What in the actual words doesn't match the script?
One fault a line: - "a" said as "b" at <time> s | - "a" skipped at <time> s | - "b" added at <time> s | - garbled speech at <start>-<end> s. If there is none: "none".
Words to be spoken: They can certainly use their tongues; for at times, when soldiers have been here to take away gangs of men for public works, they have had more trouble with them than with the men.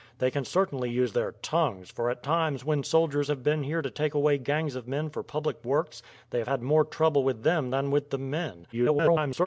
- garbled speech at 8.7-9.5 s